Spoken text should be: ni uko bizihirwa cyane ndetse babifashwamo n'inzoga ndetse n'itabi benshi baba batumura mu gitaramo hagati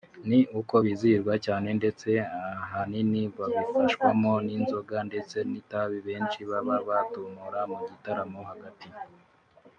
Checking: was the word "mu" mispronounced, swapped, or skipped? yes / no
no